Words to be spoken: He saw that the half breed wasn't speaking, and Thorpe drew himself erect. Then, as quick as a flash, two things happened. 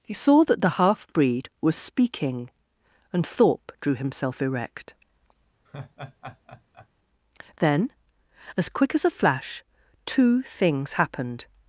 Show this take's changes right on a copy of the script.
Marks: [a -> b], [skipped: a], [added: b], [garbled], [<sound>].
He saw that the half breed [wasn't -> was] speaking, and Thorpe drew himself erect. [laugh] Then, as quick as a flash, two things happened.